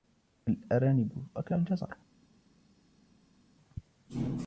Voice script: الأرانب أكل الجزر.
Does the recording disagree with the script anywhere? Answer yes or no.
no